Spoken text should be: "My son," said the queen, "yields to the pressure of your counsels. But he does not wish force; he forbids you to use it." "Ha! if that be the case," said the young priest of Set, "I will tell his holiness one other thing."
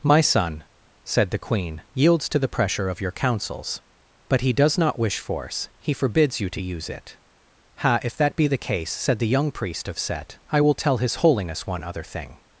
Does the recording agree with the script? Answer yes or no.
yes